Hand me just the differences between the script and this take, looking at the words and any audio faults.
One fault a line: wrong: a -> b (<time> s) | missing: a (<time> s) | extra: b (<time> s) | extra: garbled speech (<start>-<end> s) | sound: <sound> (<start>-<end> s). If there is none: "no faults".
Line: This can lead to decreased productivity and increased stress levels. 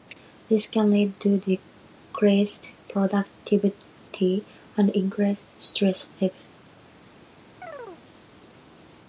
sound: chirp (7.6-8.0 s)